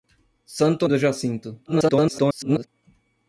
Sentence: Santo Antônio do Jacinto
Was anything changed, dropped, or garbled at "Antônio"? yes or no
yes